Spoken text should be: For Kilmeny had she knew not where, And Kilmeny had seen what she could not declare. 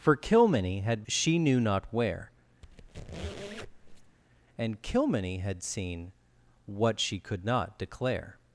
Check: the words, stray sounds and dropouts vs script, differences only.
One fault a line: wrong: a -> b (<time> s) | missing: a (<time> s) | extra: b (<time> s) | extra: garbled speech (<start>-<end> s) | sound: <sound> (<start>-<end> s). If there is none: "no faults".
sound: squeak (2.6-4.2 s)